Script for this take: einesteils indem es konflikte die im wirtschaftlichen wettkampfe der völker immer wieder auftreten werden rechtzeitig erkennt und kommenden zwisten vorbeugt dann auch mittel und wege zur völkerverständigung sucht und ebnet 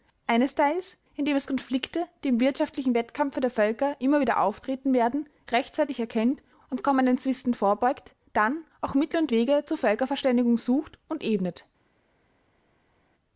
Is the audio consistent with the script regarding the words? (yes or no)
yes